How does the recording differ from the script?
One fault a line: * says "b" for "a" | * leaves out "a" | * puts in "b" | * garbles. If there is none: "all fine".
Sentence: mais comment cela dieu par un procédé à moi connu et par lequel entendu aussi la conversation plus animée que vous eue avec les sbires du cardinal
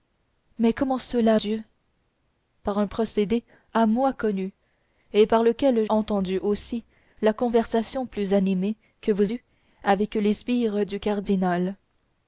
all fine